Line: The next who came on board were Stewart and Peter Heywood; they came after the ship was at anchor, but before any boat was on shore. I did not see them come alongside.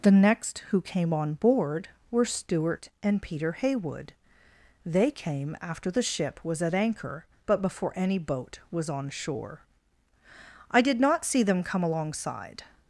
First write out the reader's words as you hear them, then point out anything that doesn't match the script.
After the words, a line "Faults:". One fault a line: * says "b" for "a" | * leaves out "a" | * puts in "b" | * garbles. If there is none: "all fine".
The next who came on board were Stewart and Peter Heywood; they came after the ship was at anchor, but before any boat was on shore. I did not see them come alongside.
Faults:
all fine